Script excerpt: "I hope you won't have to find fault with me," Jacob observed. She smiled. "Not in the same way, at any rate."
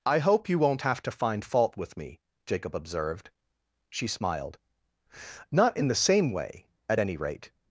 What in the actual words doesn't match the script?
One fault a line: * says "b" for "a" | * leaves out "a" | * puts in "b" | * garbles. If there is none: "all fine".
all fine